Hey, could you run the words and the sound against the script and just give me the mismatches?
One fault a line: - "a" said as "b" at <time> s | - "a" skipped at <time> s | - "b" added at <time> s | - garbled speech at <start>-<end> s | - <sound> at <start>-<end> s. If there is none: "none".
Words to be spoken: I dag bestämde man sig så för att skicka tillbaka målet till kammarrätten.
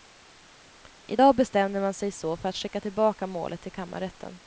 none